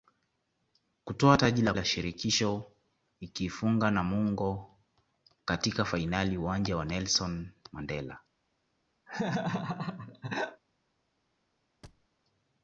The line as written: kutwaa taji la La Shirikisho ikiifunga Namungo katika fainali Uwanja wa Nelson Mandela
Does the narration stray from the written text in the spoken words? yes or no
no